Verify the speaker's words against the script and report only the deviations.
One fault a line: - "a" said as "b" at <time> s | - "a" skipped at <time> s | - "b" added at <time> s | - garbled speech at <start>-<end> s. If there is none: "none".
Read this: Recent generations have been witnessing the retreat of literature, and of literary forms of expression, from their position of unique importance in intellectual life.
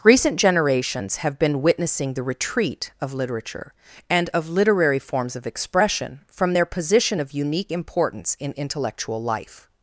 none